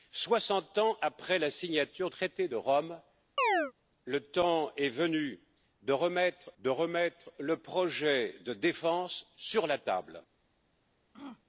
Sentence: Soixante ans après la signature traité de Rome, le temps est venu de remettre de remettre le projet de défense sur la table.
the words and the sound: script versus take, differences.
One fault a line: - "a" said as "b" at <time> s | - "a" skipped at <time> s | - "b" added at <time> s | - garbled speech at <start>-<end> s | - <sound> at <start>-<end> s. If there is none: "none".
- chirp at 3.4-3.7 s
- throat clearing at 11.1-11.4 s